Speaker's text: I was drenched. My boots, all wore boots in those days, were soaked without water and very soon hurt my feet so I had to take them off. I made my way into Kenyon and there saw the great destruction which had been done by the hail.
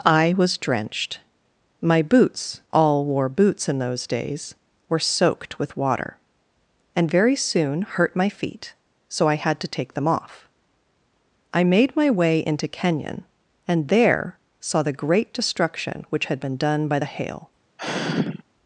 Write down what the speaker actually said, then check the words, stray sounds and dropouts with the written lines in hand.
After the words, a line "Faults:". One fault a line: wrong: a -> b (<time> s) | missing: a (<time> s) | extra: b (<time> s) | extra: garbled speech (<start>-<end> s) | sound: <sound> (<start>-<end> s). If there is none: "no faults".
I was drenched. My boots, all wore boots in those days, were soaked with water and very soon hurt my feet so I had to take them off. I made my way into Kenyon and there saw the great destruction which had been done by the hail.
Faults:
wrong: without -> with (5.6 s)
sound: sigh (17.8-18.4 s)